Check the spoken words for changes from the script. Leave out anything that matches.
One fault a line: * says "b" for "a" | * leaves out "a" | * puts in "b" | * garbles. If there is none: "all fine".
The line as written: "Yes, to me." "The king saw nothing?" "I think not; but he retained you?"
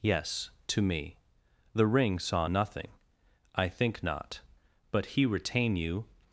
* says "ring" for "king"
* says "retain" for "retained"